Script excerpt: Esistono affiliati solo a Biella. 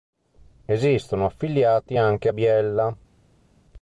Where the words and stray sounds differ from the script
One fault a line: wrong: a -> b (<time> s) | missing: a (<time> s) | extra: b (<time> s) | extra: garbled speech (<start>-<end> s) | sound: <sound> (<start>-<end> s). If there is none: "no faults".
wrong: solo -> anche (2.0 s)